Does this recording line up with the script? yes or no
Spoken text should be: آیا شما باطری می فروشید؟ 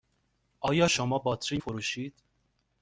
no